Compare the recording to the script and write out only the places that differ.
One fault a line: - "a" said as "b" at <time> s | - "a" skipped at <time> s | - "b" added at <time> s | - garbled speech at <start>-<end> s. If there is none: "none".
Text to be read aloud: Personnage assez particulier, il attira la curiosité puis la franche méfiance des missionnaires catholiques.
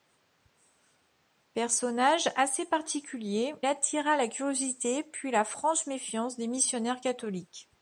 - "il" skipped at 3.5 s